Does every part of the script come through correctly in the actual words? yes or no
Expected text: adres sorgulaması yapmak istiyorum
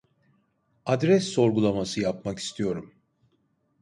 yes